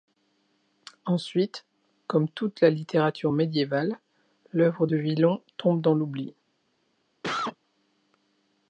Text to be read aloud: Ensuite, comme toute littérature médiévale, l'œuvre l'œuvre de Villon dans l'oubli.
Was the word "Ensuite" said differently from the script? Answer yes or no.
no